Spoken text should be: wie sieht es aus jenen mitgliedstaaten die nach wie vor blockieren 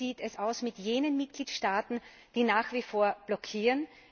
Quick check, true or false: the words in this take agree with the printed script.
false